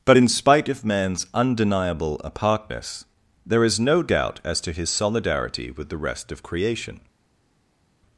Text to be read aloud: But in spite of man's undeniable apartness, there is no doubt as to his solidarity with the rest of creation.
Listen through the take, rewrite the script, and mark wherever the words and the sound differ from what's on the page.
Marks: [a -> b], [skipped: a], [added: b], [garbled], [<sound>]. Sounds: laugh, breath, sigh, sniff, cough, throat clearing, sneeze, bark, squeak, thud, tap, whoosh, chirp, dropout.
But in spite of man's undeniable apartness, there is no doubt as to his solidarity with the rest of creation.